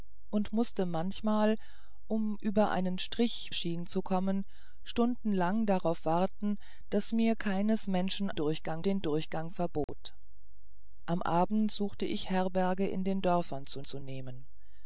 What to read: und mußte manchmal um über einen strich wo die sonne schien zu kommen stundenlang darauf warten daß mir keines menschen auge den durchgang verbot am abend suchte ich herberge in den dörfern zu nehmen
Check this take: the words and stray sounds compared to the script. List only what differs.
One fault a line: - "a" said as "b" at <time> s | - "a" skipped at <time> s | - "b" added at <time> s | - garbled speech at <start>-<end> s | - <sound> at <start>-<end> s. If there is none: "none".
- "wo die sonne" skipped at 3.5 s
- "auge" said as "durchgang" at 8.3 s
- dropout at 9.8-9.9 s
- "zu" added at 13.8 s